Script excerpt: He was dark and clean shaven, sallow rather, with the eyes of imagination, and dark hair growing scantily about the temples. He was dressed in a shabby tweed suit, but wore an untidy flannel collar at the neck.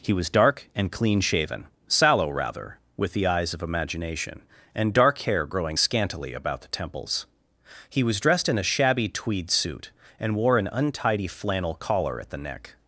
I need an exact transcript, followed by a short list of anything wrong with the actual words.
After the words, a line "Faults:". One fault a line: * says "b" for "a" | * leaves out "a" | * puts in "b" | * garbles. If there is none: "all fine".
He was dark and clean shaven, sallow rather, with the eyes of imagination, and dark hair growing scantily about the temples. He was dressed in a shabby tweed suit, and wore an untidy flannel collar at the neck.
Faults:
* says "and" for "but"